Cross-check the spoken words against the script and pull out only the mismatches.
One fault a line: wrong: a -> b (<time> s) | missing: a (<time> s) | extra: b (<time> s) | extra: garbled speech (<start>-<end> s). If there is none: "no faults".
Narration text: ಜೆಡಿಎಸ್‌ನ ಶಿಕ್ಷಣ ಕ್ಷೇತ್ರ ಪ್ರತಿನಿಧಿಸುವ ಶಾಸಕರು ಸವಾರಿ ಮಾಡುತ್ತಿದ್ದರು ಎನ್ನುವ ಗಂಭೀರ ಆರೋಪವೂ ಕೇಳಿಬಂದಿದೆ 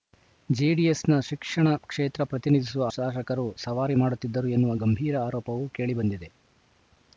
no faults